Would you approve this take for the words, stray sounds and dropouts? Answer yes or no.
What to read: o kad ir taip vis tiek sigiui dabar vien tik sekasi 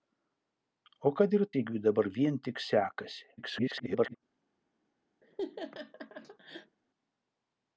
no